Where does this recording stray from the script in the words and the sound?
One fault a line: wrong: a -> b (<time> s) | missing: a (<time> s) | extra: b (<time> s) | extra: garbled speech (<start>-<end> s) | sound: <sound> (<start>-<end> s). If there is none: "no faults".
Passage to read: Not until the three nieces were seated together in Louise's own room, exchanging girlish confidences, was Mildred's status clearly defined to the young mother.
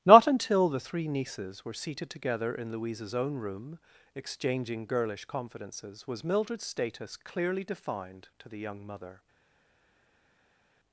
no faults